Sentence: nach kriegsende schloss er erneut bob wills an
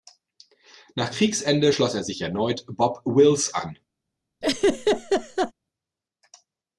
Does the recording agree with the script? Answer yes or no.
no